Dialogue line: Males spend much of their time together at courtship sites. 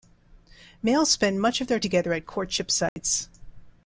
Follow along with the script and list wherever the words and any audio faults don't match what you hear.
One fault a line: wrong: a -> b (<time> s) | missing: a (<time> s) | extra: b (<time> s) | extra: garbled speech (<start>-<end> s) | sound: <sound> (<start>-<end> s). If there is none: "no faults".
missing: time (1.8 s)
sound: dropout (2.9-3.0 s)